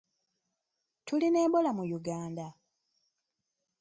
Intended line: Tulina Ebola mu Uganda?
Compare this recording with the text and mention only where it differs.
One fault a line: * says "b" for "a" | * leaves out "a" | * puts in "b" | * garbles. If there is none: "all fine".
all fine